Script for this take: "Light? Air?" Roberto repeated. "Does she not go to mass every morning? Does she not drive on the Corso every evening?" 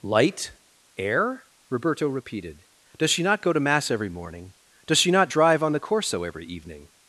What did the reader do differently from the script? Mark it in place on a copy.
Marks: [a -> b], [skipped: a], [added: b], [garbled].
"Light? Air?" Roberto repeated. "Does she not go to mass every morning? Does she not drive on the Corso every evening?"